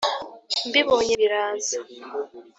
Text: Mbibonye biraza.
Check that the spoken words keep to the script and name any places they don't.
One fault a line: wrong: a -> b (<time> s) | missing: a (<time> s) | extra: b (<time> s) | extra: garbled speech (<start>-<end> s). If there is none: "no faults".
no faults